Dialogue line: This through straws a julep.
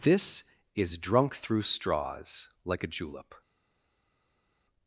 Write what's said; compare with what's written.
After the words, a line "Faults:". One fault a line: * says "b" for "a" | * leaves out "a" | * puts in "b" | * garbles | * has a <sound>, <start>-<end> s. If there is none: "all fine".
This is drunk through straws like a julep.
Faults:
* puts in "is drunk"
* puts in "like"